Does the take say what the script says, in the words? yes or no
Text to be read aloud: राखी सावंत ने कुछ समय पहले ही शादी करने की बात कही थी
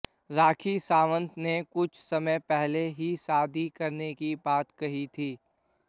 yes